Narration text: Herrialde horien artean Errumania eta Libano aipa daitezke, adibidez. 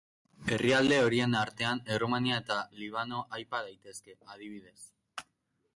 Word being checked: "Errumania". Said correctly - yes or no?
yes